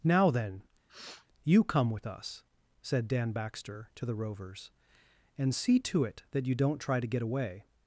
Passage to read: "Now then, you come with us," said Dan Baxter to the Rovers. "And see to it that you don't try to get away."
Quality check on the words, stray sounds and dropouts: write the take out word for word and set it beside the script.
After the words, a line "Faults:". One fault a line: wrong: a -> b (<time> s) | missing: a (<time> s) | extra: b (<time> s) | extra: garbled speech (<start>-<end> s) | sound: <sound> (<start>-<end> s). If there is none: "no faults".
"Now then, you come with us," said Dan Baxter to the Rovers. "And see to it that you don't try to get away."
Faults:
sound: sniff (0.9-1.3 s)